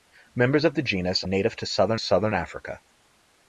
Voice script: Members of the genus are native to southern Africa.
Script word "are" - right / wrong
wrong